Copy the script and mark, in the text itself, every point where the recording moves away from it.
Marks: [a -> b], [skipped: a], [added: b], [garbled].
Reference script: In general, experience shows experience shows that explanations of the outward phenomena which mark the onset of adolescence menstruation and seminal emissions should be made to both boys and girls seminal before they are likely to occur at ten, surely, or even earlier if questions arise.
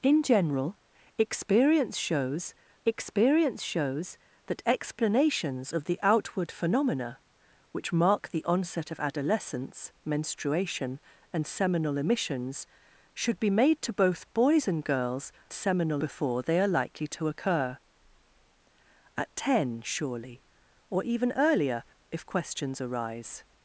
In general, experience shows experience shows that explanations of the outward phenomena which mark the onset of adolescence menstruation and seminal emissions should be made to both boys and girls seminal before they are likely to occur at ten, surely, or even earlier if questions arise.